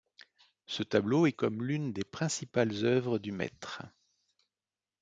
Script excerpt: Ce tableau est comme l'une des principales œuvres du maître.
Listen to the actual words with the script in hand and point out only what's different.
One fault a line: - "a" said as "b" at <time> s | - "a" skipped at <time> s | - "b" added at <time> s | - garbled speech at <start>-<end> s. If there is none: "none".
none